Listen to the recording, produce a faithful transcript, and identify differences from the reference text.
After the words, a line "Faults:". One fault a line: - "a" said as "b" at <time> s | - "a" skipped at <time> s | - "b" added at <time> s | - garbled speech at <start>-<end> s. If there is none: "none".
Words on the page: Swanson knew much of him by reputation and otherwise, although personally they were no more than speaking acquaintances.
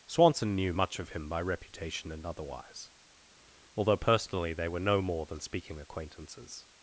Swanson knew much of him by reputation and otherwise, although personally they were no more than speaking acquaintances.
Faults:
none